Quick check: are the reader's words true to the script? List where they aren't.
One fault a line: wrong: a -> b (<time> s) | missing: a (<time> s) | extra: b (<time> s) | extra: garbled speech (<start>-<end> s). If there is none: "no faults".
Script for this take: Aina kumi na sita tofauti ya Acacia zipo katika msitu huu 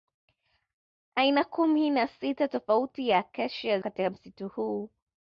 missing: zipo (3.8 s)